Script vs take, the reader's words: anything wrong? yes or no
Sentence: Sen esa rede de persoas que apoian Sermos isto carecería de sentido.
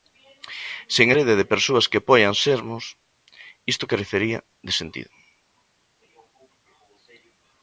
yes